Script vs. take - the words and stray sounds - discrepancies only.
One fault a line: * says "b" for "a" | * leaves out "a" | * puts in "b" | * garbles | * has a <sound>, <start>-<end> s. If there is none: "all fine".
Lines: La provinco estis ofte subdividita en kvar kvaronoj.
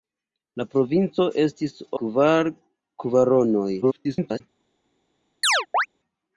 * leaves out "ofte subdividita en"
* garbles
* has a chirp, 5.4-5.9 s